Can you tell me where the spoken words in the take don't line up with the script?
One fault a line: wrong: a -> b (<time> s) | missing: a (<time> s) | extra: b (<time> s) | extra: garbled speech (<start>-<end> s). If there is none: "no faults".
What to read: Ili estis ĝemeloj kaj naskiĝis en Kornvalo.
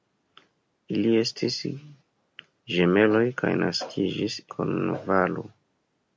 missing: en (4.4 s)